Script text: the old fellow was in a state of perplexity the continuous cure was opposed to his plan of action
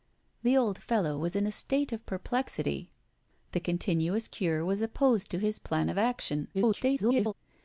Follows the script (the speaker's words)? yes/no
no